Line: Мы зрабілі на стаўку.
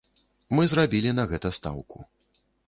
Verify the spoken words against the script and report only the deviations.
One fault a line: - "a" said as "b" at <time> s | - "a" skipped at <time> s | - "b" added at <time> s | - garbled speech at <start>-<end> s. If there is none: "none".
- "гэта" added at 1.3 s